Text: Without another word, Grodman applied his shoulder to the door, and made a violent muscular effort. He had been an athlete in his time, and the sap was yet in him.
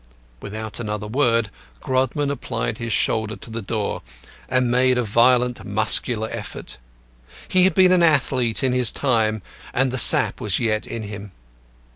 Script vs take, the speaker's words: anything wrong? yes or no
no